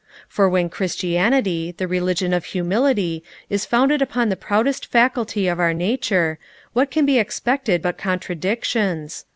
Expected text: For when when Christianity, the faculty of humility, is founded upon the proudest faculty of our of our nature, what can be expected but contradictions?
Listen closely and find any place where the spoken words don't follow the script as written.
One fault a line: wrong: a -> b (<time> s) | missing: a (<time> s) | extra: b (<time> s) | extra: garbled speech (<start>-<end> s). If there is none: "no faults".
missing: when (0.7 s)
wrong: faculty -> religion (1.9 s)
missing: of our (5.8 s)